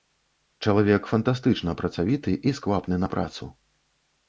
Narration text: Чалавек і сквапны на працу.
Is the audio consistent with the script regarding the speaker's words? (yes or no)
no